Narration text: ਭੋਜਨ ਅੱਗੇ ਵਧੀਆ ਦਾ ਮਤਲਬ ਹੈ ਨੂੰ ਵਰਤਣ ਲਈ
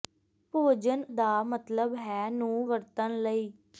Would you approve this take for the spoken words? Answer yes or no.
no